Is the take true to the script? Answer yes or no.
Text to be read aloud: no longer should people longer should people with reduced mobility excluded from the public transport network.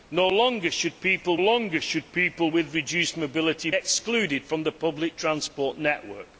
yes